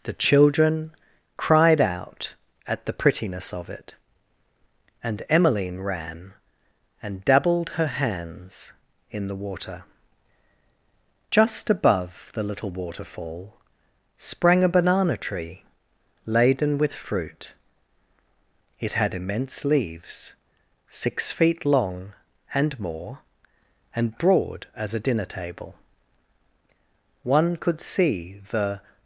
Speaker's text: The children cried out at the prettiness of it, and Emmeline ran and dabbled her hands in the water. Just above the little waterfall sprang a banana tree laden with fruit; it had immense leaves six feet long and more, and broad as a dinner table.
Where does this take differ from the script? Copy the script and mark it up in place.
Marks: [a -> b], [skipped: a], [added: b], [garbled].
The children cried out at the prettiness of it, and Emmeline ran and dabbled her hands in the water. Just above the little waterfall sprang a banana tree laden with fruit; it had immense leaves six feet long and more, and broad as a dinner table. [added: One could see the]